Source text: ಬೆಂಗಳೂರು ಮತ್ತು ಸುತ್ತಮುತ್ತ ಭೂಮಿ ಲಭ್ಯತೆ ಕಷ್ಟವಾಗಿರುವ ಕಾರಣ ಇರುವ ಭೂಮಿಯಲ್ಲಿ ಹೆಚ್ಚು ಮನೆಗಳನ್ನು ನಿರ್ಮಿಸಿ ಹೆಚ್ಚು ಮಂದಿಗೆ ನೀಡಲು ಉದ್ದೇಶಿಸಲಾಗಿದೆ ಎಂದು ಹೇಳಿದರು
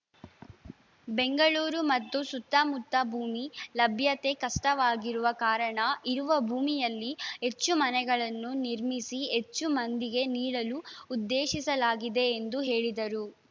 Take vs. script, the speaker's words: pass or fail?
pass